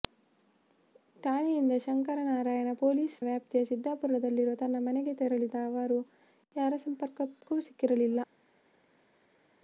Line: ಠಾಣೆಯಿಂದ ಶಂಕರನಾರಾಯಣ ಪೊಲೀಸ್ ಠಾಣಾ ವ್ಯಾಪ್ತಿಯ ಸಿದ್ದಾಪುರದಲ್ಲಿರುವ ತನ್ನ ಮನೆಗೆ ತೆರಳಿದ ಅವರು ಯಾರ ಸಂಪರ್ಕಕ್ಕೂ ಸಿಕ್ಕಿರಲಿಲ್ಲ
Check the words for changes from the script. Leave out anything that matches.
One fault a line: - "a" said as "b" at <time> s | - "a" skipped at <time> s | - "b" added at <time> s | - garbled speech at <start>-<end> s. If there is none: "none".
- "ಠಾಣಾ" skipped at 3.2 s